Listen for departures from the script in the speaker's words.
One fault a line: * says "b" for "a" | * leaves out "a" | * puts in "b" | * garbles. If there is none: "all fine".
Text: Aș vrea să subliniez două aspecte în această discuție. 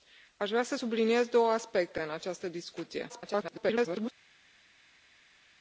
* garbles